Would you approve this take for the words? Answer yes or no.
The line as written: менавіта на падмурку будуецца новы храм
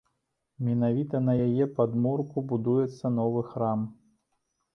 no